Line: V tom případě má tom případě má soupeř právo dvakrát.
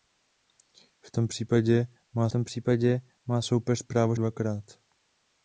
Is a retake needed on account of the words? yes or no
no